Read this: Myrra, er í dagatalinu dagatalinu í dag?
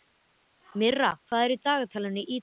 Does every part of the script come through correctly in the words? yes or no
no